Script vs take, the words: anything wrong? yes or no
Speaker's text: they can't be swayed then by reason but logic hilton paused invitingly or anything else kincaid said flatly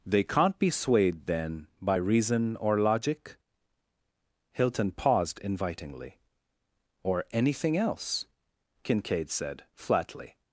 yes